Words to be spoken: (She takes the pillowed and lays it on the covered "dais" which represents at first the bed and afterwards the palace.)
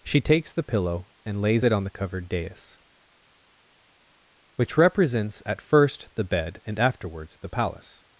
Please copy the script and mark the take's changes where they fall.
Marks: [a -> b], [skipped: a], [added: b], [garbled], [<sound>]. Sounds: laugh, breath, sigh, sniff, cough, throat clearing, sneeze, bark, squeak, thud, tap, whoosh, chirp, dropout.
(She takes the [pillowed -> pillow] and lays it on the covered "dais" which represents at first the bed and afterwards the palace.)